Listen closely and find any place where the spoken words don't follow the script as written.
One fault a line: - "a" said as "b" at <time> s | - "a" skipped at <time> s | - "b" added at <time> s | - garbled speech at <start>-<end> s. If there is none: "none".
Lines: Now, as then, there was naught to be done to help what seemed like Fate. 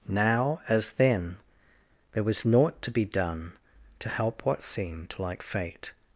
none